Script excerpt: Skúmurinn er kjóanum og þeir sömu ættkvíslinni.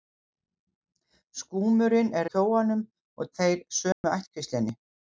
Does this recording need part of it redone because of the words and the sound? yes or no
yes